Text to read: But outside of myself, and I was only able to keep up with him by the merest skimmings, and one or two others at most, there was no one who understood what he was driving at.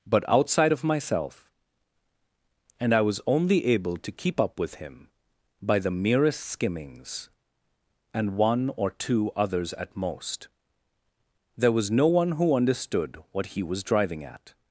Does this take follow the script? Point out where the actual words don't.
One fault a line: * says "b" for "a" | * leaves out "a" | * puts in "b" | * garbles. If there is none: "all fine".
all fine